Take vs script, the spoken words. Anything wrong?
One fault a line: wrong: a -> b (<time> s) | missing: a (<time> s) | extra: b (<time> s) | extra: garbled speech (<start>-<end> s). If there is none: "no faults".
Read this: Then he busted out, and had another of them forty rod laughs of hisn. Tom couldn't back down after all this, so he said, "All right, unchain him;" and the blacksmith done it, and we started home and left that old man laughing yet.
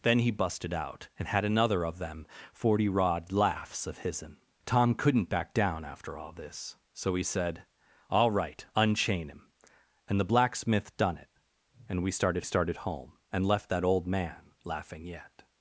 extra: started (12.4 s)